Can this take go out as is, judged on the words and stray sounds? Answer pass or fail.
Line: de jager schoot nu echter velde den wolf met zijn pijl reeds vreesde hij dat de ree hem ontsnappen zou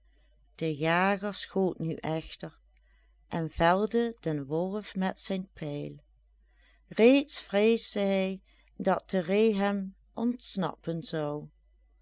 fail